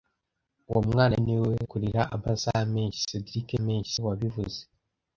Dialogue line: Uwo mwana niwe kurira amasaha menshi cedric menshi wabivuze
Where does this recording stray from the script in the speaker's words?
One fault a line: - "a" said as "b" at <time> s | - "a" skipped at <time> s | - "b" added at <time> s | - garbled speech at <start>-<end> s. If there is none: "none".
none